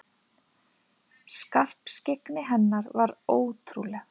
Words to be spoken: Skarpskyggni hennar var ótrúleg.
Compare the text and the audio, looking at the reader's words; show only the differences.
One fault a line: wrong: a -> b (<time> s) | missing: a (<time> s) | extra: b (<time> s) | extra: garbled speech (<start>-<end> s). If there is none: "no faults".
no faults